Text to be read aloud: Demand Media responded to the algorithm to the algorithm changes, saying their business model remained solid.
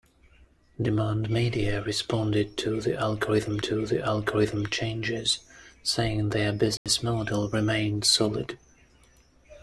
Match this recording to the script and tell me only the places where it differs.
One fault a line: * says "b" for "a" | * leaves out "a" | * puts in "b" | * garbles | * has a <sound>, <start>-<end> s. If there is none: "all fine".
* has a dropout, 6.8-6.9 s